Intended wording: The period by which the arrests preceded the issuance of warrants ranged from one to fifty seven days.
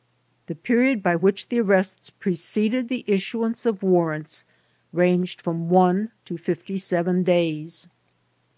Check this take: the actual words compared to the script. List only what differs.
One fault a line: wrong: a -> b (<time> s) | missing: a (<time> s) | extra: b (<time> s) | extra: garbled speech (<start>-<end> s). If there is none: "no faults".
no faults